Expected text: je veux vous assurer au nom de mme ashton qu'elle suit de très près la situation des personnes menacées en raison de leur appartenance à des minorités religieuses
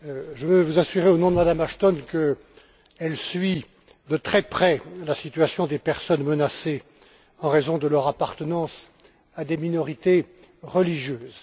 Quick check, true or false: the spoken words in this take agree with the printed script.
true